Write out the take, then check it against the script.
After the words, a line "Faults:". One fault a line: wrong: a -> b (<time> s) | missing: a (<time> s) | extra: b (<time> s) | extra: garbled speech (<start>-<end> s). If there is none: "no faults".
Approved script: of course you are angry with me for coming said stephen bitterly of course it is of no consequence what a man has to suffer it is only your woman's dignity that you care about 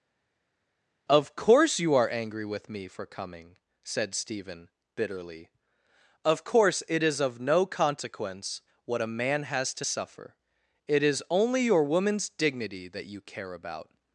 of course you are angry with me for coming said stephen bitterly of course it is of no consequence what a man has to suffer it is only your woman's dignity that you care about
Faults:
no faults